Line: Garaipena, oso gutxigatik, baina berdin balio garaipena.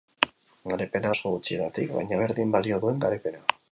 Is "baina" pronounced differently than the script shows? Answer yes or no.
no